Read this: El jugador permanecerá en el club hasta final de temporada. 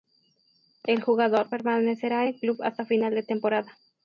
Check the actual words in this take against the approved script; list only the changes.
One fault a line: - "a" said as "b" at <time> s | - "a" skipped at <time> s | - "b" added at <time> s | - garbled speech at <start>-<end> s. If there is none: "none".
- "en" skipped at 2.2 s